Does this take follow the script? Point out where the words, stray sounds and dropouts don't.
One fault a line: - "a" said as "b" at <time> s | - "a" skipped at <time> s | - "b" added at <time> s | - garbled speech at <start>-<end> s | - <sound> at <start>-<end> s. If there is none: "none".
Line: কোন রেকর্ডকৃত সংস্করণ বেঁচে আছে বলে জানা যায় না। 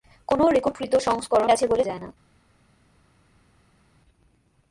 - "বেঁচে" skipped at 1.5 s
- "জানা" skipped at 1.8 s